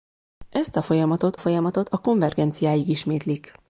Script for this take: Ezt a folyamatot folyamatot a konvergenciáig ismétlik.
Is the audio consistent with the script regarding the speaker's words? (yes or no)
yes